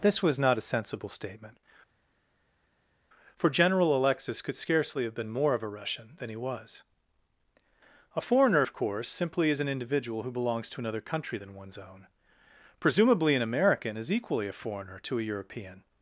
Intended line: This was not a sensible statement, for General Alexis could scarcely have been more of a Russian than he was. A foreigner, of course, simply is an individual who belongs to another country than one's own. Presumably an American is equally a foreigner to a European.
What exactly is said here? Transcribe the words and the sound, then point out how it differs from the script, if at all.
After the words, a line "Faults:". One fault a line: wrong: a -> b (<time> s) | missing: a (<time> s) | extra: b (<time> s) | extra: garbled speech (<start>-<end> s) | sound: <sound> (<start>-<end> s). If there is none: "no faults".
This was not a sensible statement, for General Alexis could scarcely have been more of a Russian than he was. A foreigner, of course, simply is an individual who belongs to another country than one's own. Presumably an American is equally a foreigner to a European.
Faults:
no faults